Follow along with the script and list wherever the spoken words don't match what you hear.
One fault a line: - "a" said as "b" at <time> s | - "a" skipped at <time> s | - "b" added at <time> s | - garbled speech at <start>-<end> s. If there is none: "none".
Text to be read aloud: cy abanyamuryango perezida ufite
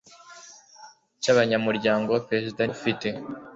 none